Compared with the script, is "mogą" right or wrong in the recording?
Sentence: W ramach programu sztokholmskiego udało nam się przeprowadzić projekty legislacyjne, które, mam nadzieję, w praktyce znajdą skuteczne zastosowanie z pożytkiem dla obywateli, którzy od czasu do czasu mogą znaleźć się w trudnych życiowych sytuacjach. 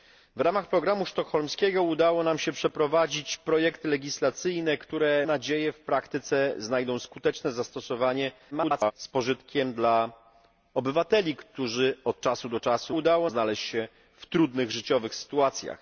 wrong